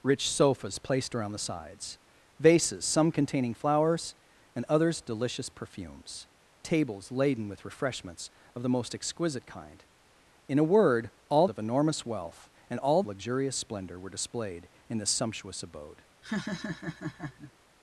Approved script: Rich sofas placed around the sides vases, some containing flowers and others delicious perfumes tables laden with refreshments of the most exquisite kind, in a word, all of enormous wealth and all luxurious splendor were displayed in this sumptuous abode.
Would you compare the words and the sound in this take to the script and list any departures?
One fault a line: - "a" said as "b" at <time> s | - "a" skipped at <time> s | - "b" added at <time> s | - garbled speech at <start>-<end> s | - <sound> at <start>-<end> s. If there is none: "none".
- laugh at 16.2-17.5 s